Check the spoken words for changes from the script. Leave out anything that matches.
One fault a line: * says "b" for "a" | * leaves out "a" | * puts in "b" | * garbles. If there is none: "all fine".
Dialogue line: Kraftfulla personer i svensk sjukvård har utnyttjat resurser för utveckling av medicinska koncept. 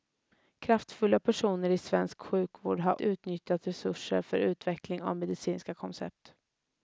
all fine